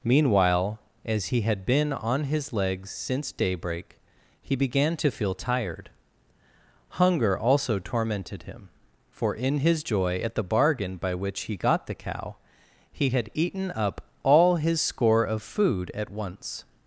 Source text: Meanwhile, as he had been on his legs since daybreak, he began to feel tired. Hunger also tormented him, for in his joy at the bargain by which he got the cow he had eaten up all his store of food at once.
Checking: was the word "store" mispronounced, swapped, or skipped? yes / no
yes